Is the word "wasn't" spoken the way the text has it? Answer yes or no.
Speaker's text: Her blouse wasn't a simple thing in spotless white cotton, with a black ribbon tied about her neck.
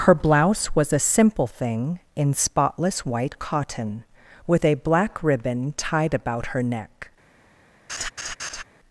no